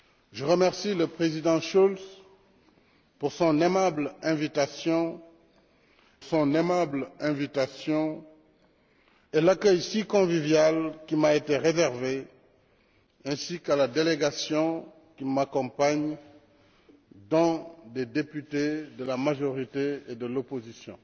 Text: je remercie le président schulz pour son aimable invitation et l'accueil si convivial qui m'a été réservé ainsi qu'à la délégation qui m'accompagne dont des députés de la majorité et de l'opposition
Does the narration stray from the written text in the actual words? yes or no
yes